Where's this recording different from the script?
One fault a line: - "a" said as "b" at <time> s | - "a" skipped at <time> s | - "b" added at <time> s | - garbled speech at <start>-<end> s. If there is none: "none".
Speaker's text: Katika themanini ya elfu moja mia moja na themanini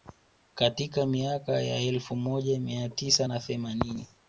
- "themanini" said as "miaka" at 1.1 s
- "moja" said as "tisa" at 2.9 s